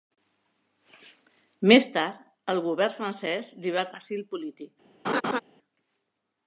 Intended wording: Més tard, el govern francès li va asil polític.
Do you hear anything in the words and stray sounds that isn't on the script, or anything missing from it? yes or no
yes